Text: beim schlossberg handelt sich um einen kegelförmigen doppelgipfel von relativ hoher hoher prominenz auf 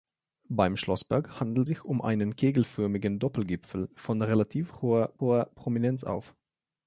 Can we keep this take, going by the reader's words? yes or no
yes